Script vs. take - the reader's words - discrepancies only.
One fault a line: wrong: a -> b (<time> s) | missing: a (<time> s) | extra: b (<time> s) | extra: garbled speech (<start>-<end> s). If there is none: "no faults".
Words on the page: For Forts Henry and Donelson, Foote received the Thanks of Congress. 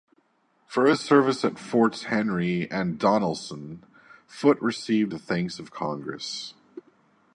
extra: his service at (0.9 s)